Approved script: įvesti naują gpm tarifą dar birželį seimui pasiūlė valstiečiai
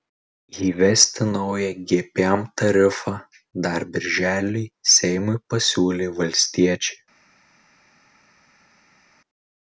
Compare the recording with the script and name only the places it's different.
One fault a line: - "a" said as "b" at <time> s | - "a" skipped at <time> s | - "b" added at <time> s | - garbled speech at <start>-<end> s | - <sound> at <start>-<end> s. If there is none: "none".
none